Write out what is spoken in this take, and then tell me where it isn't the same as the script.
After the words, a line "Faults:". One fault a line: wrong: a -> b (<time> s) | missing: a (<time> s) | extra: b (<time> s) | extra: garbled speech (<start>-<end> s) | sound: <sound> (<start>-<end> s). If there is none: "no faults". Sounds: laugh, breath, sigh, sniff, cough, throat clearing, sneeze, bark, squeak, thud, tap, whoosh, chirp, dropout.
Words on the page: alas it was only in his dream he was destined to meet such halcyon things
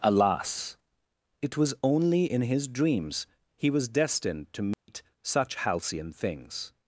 alas it was only in his dreams he was destined to meet such halcyon things
Faults:
wrong: dream -> dreams (2.7 s)
sound: dropout (4.7-4.9 s)